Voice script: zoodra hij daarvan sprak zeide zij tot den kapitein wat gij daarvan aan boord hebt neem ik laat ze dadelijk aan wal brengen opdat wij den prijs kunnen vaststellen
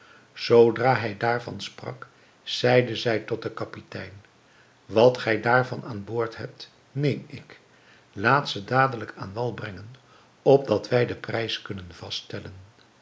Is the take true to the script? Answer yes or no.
yes